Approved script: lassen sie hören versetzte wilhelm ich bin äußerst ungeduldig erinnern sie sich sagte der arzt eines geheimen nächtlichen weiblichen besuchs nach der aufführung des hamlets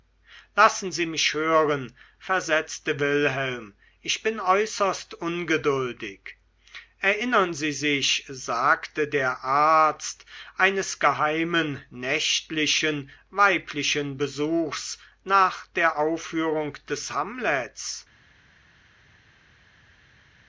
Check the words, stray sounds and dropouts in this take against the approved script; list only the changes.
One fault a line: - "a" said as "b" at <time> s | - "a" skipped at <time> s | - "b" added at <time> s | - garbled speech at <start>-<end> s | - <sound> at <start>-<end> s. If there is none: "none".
- "mich" added at 1.1 s